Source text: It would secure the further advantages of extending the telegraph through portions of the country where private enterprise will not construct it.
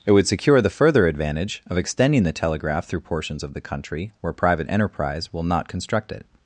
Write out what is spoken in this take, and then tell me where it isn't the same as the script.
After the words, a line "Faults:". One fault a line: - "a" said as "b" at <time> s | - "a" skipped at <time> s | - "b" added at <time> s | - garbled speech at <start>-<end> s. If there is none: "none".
It would secure the further advantage of extending the telegraph through portions of the country where private enterprise will not construct it.
Faults:
- "advantages" said as "advantage" at 1.1 s